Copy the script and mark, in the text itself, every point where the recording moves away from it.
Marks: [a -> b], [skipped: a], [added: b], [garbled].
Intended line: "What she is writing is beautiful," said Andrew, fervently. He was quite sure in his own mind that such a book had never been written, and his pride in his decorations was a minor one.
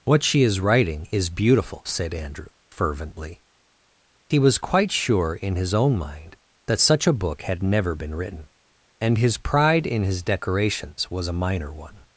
"What she is writing is beautiful," said Andrew, fervently. He was quite sure in his own mind that such a book had never been written, and his pride in his decorations was a minor one.